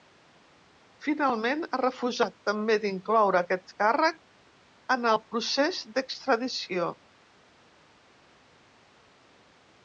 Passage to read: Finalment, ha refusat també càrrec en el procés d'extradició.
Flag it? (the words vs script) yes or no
yes